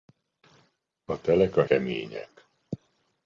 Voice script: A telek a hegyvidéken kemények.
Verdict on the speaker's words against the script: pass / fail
fail